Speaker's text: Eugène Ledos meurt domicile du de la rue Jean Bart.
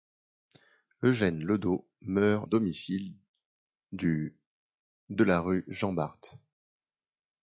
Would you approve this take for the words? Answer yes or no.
yes